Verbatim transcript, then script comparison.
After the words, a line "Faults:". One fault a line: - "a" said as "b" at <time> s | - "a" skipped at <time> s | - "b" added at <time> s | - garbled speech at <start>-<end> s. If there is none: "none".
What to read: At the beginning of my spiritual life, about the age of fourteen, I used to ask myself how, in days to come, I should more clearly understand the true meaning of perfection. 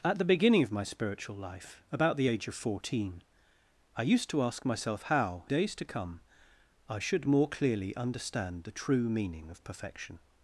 At the beginning of my spiritual life, about the age of fourteen, I used to ask myself how, days to come, I should more clearly understand the true meaning of perfection.
Faults:
- "in" skipped at 5.4 s